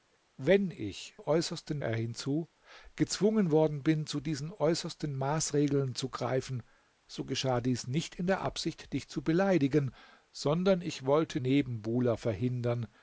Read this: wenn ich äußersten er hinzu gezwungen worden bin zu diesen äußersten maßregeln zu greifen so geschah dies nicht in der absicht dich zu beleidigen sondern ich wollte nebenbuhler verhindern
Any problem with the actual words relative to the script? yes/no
no